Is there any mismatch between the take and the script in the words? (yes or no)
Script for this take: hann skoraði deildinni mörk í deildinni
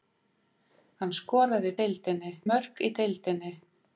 no